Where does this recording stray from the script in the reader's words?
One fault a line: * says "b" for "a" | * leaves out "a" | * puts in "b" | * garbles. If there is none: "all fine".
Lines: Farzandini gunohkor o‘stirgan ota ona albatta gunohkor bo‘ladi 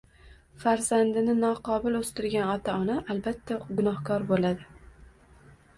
* says "noqobil" for "gunohkor"